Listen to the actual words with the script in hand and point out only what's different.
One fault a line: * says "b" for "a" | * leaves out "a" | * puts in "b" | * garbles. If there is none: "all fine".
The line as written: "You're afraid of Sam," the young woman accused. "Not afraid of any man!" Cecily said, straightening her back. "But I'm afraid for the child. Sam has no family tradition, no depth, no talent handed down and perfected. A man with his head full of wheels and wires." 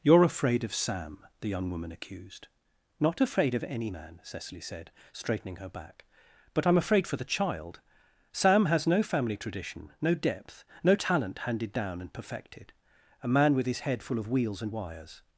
all fine